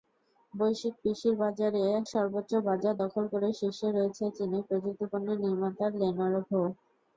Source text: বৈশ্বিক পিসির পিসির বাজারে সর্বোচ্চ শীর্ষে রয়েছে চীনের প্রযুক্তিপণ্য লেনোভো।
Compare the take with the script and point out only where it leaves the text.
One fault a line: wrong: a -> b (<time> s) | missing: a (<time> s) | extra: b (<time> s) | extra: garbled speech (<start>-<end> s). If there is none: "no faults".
missing: পিসির (1.4 s)
extra: বাজার দখল করে (2.7 s)
extra: নির্মাতা (5.4 s)